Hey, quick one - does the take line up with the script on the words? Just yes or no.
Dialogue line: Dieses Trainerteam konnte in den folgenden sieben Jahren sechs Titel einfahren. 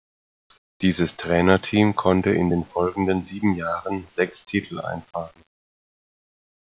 yes